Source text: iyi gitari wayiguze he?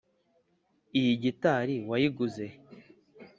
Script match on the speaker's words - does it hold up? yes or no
yes